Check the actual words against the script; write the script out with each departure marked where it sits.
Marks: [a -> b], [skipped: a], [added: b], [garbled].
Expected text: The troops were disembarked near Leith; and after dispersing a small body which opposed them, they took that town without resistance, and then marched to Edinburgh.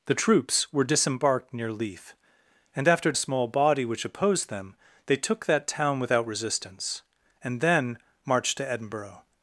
The troops were disembarked near Leith; and after [skipped: dispersing] a small body which opposed them, they took that town without resistance, and then marched to Edinburgh.